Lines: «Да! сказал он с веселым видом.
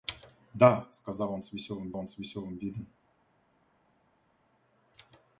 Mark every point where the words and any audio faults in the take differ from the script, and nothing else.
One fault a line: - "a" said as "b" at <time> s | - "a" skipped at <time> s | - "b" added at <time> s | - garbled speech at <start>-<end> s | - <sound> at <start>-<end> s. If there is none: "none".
- "он с веселым" added at 2.0 s